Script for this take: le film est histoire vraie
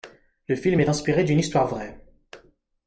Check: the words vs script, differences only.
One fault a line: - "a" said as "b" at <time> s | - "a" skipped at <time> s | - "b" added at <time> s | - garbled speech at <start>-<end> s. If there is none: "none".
- "inspiré d'une" added at 0.9 s